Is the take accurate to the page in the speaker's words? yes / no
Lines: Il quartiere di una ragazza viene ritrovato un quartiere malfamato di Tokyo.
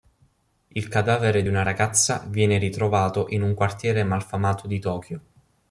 no